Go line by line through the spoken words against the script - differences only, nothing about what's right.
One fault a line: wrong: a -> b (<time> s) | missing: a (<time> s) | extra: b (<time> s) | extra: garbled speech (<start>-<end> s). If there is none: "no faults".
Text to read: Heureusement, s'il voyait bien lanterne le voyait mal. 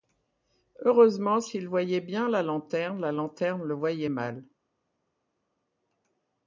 extra: la lanterne la (2.3 s)